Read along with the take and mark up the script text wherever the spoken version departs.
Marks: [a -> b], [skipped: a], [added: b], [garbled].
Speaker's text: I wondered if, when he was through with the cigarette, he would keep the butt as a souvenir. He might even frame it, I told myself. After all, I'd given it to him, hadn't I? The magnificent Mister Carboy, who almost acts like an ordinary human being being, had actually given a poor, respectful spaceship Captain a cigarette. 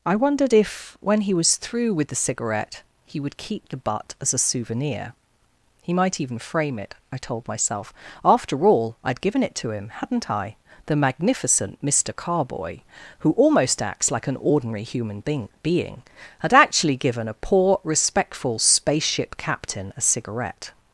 I wondered if, when he was through with the cigarette, he would keep the butt as a souvenir. He might even frame it, I told myself. After all, I'd given it to him, hadn't I? The magnificent Mister Carboy, who almost acts like an ordinary human being being, had actually given a poor, respectful spaceship Captain a cigarette.